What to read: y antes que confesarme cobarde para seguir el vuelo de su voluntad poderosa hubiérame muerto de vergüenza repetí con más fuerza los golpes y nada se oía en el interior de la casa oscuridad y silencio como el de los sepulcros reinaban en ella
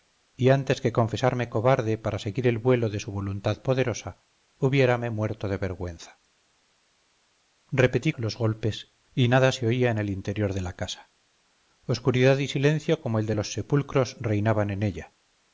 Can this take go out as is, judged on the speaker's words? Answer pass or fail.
fail